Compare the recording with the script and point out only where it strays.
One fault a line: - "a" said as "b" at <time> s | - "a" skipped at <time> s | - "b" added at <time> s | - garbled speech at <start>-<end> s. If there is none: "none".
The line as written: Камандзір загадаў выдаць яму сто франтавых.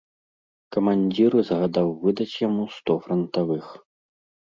none